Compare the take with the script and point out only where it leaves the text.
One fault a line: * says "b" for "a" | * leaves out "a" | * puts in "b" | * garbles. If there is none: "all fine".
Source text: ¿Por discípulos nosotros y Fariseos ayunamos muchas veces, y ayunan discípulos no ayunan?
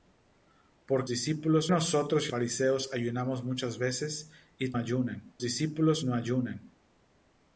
all fine